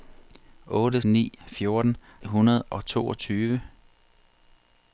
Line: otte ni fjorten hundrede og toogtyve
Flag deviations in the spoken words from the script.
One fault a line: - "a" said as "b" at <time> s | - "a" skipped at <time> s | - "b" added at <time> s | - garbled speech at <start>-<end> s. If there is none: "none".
none